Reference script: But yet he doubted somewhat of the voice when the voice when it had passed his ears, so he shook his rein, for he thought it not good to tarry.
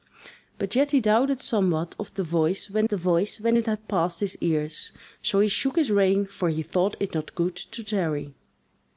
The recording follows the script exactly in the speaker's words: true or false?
true